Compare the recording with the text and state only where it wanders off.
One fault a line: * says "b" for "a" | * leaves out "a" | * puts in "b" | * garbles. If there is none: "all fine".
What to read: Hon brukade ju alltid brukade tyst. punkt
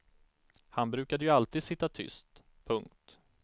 * says "Han" for "Hon"
* says "sitta" for "brukade"